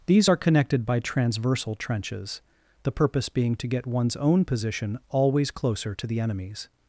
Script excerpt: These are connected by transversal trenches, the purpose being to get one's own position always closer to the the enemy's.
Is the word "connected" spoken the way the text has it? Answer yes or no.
yes